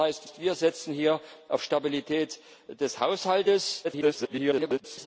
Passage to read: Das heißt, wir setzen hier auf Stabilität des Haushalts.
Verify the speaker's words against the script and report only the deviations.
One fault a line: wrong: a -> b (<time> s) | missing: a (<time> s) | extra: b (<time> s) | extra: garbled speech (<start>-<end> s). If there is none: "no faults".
extra: heißt (0.3 s)
extra: garbled speech (3.8-5.1 s)